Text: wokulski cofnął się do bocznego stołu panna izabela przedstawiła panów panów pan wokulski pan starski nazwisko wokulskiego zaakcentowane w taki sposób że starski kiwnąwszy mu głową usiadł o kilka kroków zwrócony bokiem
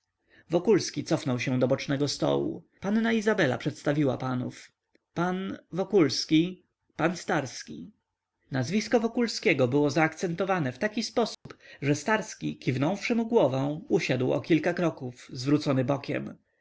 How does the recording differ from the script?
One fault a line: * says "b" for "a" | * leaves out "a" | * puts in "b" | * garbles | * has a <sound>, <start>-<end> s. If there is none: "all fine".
* leaves out "panów"
* puts in "było"
* has a dropout, 11.3-11.5 s